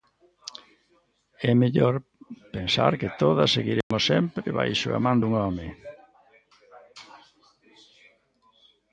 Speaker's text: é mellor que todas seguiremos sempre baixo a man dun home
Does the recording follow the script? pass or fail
fail